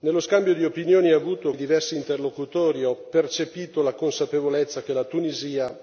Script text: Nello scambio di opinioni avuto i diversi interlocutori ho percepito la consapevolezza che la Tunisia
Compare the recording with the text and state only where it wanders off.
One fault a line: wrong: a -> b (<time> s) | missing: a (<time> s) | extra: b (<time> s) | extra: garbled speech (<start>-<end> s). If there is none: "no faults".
no faults